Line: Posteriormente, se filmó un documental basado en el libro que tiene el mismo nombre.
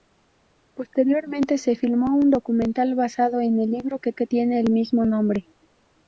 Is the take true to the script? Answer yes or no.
no